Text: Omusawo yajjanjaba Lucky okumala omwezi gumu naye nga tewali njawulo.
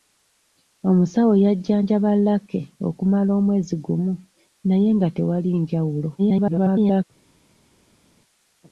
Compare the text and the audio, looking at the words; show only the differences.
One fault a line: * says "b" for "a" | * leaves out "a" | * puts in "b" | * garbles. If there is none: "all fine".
* garbles